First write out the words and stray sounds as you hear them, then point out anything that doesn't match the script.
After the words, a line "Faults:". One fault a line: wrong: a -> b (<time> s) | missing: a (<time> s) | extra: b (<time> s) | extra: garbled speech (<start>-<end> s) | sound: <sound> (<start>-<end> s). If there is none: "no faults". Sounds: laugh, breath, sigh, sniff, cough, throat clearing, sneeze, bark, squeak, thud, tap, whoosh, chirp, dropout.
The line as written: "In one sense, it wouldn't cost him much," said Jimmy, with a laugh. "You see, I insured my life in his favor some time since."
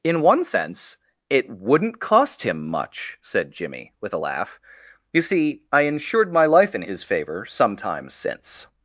"In one sense, it wouldn't cost him much," said Jimmy, with a laugh. "You see, I insured my life in his favor some time since."
Faults:
no faults